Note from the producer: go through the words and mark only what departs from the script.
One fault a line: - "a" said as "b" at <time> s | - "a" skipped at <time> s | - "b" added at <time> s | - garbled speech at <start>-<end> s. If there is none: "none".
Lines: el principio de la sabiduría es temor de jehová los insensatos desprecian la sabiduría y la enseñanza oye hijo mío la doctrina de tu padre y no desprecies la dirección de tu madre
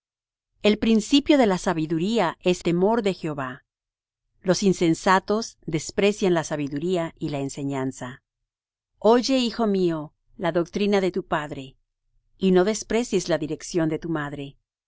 none